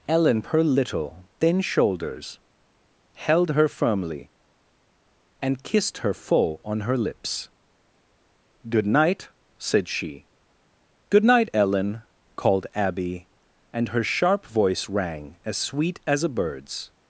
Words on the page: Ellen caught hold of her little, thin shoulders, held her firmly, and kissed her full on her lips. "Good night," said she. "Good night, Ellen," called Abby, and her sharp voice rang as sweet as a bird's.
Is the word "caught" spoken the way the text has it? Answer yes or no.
no